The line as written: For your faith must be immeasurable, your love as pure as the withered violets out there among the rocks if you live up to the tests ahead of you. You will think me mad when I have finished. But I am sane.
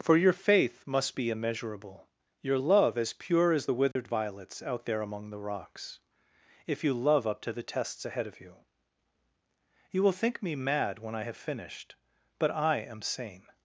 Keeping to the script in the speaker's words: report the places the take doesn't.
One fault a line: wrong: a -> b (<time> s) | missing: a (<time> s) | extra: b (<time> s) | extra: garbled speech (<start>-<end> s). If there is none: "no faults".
wrong: live -> love (6.9 s)